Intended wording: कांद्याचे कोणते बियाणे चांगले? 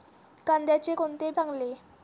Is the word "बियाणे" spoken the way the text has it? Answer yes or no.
no